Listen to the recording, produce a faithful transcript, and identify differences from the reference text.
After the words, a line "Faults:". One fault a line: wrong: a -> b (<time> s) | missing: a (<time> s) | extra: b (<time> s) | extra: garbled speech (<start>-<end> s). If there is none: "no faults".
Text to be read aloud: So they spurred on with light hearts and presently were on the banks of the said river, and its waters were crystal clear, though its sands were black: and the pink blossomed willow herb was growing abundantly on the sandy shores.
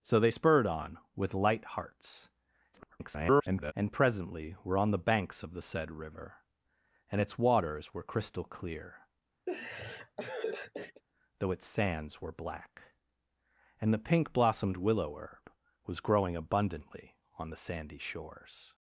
So they spurred on with light hearts [garbled] and presently were on the banks of the said river, and its waters were crystal clear, though its sands were black: and the pink blossomed willow herb was growing abundantly on the sandy shores.
Faults:
extra: garbled speech (2.7-3.7 s)